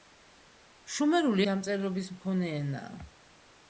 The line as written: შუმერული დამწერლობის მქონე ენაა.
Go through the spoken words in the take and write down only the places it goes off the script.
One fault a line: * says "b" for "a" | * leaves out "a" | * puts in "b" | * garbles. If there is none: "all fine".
all fine